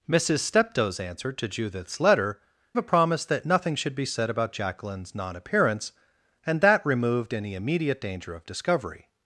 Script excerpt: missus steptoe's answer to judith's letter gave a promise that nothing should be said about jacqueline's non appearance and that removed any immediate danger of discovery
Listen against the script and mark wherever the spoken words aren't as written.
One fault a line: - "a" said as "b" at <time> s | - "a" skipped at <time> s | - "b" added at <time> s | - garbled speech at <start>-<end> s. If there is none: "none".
- "gave" skipped at 2.4 s